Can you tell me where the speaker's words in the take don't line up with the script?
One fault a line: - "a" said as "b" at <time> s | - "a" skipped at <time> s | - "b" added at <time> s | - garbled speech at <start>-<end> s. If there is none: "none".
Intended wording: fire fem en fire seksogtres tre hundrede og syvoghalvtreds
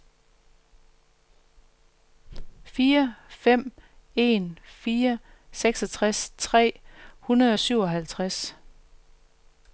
none